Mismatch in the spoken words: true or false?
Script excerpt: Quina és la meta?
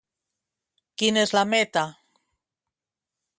false